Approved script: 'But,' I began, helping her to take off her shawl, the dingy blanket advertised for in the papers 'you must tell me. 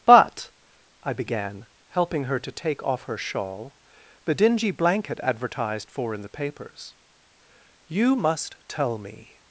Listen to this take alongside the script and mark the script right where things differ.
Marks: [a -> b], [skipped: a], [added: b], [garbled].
'But,' I began, helping her to take off her shawl, the dingy blanket advertised for in the papers 'you must tell me.